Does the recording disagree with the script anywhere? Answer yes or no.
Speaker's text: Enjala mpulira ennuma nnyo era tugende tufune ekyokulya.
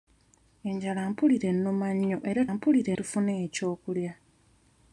yes